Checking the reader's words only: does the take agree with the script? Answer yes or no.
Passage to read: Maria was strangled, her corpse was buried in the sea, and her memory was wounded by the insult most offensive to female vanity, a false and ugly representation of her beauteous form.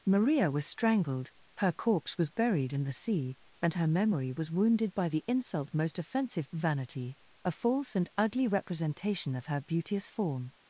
no